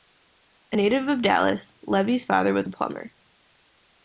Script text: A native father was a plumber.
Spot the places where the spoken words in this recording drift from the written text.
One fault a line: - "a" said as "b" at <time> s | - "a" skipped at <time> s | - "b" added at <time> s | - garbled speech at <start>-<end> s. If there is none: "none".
- "of Dallas Levy's" added at 1.1 s